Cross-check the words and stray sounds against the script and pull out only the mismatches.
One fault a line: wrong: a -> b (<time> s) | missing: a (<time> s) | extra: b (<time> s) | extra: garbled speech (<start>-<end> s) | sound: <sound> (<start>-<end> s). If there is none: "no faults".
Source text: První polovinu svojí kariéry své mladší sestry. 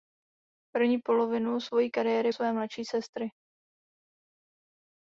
no faults